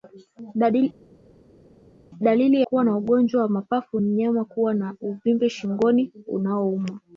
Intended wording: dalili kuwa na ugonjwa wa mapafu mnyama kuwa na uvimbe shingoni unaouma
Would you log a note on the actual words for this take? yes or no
no